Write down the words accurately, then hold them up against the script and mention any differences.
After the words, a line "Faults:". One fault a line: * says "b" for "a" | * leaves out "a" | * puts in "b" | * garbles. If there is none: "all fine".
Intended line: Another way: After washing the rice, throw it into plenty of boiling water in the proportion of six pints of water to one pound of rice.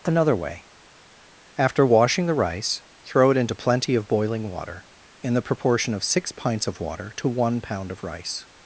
Another way: After washing the rice, throw it into plenty of boiling water in the proportion of six pints of water to one pound of rice.
Faults:
all fine